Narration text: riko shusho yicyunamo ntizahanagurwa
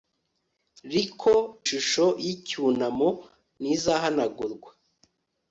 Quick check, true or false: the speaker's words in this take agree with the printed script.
true